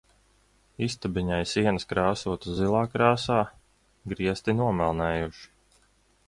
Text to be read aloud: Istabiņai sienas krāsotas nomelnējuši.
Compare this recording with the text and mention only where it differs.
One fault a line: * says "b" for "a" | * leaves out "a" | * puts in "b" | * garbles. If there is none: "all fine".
* puts in "zilā krāsā griesti"